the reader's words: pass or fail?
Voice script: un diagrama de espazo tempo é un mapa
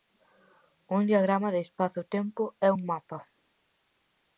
pass